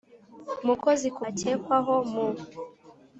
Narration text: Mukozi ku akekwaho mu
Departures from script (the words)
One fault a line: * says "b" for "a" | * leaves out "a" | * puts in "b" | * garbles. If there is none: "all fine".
all fine